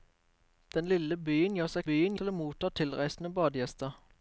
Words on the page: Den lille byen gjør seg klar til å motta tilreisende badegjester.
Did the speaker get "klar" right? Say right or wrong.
wrong